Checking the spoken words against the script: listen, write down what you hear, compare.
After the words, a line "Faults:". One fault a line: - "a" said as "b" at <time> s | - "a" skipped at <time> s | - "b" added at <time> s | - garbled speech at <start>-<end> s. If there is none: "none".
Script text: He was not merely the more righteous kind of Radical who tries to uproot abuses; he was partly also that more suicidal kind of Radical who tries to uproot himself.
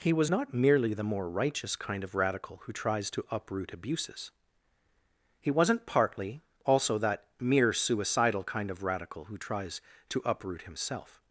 He was not merely the more righteous kind of Radical who tries to uproot abuses; he wasn't partly also that mere suicidal kind of Radical who tries to uproot himself.
Faults:
- "was" said as "wasn't" at 5.5 s
- "more" said as "mere" at 7.4 s